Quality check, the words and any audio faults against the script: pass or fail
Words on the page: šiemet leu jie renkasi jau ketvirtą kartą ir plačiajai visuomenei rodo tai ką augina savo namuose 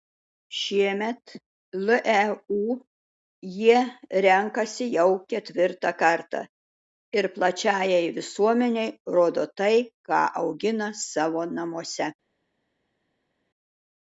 pass